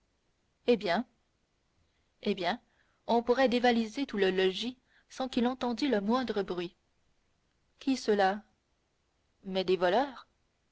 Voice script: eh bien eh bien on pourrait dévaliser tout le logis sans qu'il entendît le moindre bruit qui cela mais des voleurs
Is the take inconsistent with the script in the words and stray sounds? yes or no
no